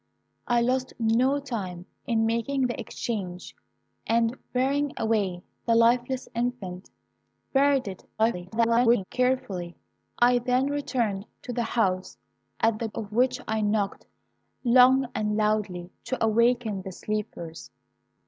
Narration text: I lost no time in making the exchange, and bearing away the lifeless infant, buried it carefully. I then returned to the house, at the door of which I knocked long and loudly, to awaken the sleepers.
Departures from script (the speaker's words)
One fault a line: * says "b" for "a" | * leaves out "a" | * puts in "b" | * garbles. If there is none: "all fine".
* garbles
* leaves out "door"